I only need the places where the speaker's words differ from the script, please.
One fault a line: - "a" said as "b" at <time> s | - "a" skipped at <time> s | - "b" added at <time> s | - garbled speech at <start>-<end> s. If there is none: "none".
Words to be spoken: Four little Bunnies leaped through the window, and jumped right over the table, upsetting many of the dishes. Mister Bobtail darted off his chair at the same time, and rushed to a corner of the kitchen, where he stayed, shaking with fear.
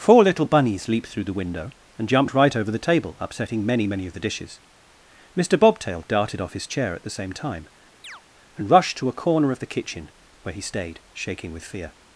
- "many" added at 3.9 s